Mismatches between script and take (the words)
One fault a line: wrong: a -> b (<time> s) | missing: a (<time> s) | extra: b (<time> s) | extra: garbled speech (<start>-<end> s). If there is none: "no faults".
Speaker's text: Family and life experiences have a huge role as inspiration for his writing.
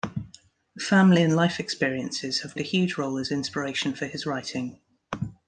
no faults